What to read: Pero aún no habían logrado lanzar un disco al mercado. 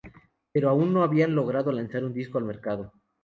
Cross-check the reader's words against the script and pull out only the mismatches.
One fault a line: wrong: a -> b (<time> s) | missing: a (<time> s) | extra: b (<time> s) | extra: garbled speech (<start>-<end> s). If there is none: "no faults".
no faults